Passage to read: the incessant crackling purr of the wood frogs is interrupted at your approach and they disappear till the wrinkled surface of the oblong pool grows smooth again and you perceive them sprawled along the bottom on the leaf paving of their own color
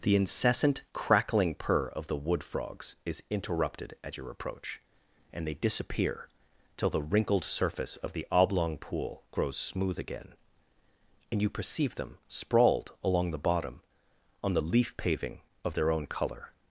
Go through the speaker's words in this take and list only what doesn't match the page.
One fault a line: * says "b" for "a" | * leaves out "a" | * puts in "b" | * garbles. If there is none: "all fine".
all fine